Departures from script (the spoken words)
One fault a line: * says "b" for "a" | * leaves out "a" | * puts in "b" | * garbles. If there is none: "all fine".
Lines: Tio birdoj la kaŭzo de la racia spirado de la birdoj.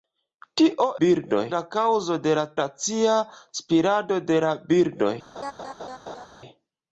all fine